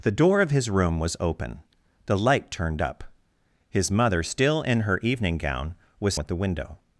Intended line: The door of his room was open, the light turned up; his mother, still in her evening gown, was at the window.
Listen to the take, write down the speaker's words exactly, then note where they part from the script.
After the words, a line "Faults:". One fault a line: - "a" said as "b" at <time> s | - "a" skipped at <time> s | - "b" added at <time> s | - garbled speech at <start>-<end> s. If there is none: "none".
The door of his room was open, the light turned up; his mother, still in her evening gown, was at the window.
Faults:
none